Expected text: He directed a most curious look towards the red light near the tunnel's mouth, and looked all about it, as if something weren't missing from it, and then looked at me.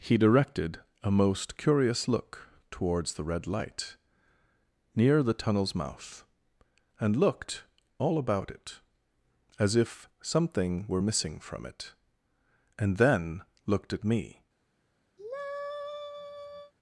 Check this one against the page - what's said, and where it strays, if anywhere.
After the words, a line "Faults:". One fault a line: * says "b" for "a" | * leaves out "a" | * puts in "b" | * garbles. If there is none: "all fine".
He directed a most curious look towards the red light near the tunnel's mouth, and looked all about it, as if something were missing from it, and then looked at me.
Faults:
* says "were" for "weren't"